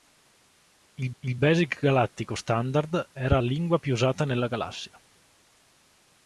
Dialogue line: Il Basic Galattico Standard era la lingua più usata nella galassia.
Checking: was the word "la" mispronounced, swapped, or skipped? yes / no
yes